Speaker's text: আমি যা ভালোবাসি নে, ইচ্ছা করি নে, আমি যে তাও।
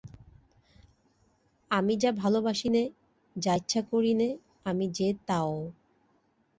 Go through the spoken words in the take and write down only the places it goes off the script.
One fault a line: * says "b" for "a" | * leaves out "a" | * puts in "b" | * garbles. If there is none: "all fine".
* puts in "যা"